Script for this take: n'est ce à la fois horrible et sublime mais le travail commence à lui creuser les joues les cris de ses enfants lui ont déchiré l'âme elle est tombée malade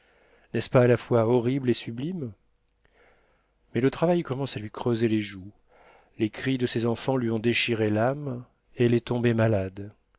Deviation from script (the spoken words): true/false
true